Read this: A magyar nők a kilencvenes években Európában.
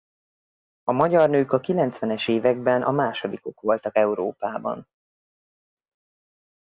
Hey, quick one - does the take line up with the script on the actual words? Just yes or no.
no